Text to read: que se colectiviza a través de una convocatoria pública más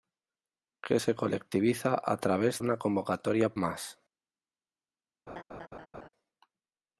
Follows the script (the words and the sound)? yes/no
no